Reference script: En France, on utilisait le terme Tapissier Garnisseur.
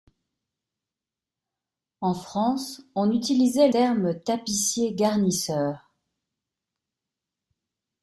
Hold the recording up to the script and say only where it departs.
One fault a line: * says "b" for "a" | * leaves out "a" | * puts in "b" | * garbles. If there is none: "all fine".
* leaves out "le"